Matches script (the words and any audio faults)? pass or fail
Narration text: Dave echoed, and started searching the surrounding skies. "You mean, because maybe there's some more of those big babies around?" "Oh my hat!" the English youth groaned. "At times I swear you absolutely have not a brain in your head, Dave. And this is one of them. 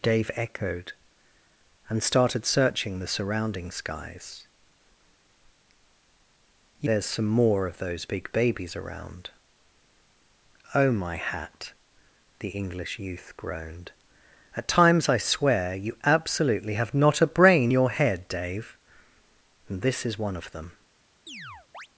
fail